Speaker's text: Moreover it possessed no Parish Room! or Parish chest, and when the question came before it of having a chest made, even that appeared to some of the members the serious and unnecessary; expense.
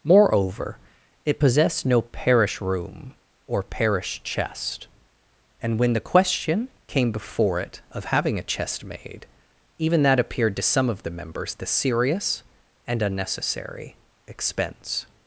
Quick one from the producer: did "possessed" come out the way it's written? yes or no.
yes